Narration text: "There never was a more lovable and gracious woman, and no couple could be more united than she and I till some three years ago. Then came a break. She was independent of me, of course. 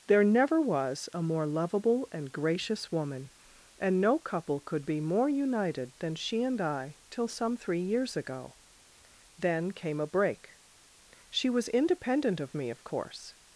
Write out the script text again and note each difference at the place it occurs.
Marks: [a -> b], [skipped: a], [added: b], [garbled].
"There never was a more lovable and gracious woman, and no couple could be more united than she and I till some three years ago. Then came a break. She was independent of me, of course.